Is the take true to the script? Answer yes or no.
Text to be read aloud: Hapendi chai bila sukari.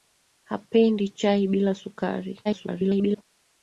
no